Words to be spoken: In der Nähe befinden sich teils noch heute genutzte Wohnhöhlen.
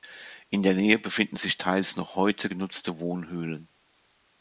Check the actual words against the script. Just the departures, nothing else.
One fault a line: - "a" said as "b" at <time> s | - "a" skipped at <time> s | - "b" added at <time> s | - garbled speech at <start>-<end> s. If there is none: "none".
none